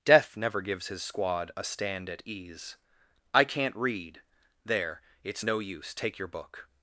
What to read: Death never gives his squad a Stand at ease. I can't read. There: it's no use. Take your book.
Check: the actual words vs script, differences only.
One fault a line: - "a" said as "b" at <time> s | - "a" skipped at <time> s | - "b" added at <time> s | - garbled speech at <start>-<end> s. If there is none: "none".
none